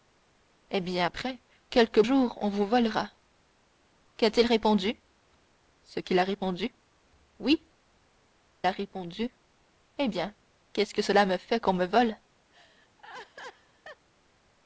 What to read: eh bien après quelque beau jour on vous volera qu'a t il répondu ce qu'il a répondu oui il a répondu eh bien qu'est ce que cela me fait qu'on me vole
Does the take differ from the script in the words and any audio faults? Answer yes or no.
yes